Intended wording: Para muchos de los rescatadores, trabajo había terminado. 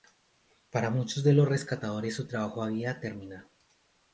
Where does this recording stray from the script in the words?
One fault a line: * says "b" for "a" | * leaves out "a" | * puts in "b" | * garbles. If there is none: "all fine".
* puts in "su"